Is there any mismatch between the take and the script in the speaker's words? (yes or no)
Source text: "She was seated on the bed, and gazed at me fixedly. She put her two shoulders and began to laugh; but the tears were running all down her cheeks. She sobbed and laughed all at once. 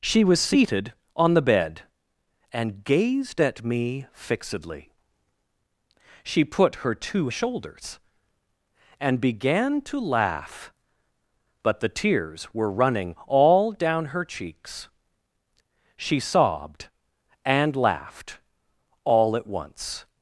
no